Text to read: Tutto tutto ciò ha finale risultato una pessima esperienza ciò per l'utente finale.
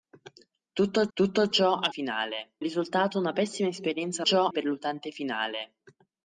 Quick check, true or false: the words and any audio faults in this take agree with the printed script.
true